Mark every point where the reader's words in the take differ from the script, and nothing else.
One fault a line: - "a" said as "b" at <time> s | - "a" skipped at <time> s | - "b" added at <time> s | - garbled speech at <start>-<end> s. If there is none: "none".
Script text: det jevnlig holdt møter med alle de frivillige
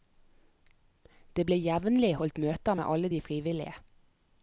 - "ble" added at 1.5 s